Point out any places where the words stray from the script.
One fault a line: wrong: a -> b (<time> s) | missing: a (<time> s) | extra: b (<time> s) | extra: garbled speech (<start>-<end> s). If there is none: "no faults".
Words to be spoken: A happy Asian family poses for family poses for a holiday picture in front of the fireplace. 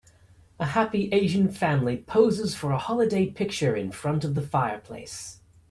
missing: family poses for (2.7 s)